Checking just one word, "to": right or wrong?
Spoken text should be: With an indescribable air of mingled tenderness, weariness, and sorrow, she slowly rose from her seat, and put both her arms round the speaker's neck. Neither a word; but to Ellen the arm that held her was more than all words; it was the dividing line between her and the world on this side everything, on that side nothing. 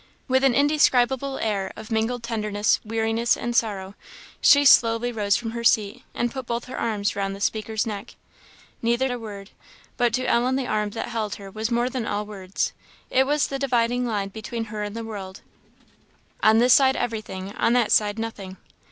right